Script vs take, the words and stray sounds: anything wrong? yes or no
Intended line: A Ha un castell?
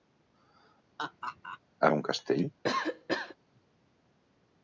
yes